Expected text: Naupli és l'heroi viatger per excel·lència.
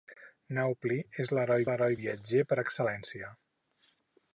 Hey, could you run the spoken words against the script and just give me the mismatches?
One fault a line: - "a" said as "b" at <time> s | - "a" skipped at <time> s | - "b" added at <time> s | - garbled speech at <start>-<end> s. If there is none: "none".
- "l'heroi" added at 1.7 s